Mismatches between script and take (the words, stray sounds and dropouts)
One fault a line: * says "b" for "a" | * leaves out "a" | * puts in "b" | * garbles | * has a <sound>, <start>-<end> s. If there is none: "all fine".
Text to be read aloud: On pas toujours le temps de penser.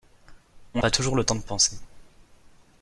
all fine